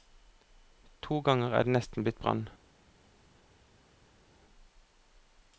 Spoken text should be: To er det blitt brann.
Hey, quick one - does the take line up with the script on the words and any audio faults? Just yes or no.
no